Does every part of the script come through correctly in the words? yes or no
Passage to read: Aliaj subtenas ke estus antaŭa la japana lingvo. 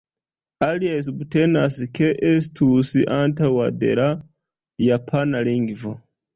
no